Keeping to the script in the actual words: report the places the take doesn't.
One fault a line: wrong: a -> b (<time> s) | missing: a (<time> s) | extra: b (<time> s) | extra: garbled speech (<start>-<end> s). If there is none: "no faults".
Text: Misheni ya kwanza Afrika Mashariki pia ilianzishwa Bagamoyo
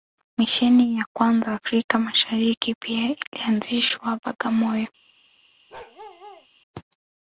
no faults